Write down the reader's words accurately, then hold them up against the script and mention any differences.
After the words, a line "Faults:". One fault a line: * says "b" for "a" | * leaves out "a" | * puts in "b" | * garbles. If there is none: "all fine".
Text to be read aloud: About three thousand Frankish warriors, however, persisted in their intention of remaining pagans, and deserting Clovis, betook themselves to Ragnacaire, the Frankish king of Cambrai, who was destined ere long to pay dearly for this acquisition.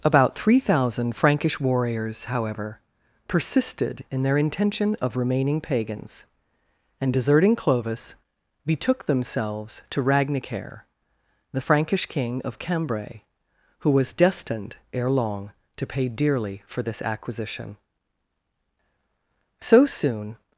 About three thousand Frankish warriors, however, persisted in their intention of remaining pagans, and deserting Clovis, betook themselves to Ragnacaire, the Frankish king of Cambrai, who was destined ere long to pay dearly for this acquisition. So soon
Faults:
* puts in "So soon"